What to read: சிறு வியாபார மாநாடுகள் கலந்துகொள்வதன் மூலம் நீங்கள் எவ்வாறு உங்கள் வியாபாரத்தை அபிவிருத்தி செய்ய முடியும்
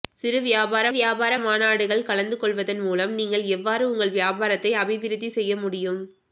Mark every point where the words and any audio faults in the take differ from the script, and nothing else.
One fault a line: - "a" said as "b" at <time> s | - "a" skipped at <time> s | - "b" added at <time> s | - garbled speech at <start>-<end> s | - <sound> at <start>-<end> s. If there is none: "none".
- "வியாபார" added at 0.9 s